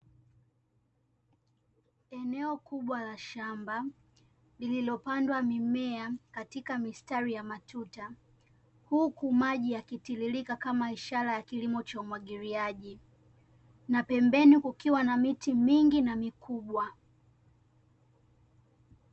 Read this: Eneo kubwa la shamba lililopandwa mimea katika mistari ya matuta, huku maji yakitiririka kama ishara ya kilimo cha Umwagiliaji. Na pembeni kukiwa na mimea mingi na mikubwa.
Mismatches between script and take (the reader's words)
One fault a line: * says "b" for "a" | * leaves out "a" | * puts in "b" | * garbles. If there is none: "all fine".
* says "miti" for "mimea"